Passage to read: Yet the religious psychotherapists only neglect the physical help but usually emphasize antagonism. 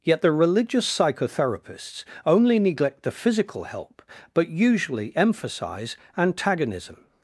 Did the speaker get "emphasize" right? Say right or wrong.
right